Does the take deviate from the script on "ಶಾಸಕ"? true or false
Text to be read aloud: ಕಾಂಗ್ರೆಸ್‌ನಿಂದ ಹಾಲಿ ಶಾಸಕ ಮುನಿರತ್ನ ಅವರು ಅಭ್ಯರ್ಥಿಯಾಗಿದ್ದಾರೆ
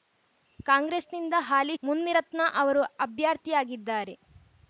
true